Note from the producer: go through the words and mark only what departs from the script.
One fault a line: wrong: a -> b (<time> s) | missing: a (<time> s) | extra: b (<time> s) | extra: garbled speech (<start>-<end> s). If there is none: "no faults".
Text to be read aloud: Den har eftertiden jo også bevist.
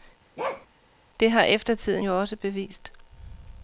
wrong: Den -> Det (1.2 s)